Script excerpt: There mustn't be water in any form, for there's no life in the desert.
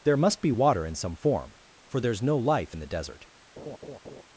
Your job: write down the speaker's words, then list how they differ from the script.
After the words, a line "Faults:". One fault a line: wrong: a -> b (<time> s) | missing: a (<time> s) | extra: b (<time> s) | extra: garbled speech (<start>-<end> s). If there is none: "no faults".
There must be water in some form, for there's no life in the desert.
Faults:
wrong: mustn't -> must (0.2 s)
wrong: any -> some (1.0 s)